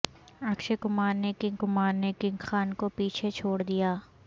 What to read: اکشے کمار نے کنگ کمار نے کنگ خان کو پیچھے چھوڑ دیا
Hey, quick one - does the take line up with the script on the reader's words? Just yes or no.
yes